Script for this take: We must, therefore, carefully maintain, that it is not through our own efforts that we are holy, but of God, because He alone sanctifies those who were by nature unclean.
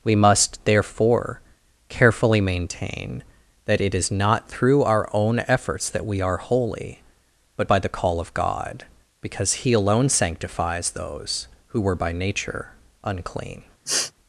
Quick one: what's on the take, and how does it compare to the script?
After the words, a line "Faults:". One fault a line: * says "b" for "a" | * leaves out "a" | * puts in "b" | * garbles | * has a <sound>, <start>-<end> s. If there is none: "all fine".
We must, therefore, carefully maintain, that it is not through our own efforts that we are holy, but by the call of God, because He alone sanctifies those who were by nature unclean.
Faults:
* puts in "by the call"
* has a sniff, 13.8-14.1 s